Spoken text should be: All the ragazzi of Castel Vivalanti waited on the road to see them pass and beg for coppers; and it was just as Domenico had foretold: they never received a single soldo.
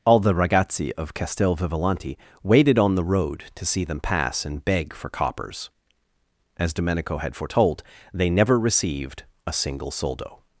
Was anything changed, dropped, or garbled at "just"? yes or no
yes